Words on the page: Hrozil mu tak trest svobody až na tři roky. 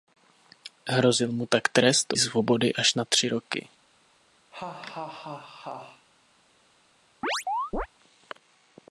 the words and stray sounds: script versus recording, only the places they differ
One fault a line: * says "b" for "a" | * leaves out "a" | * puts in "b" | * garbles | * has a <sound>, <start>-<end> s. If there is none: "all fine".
* has a laugh, 4.5-6.1 s
* has a chirp, 7.2-7.9 s